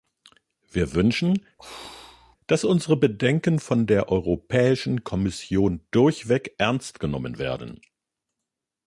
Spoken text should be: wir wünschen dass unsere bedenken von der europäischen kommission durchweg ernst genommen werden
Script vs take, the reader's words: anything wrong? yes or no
no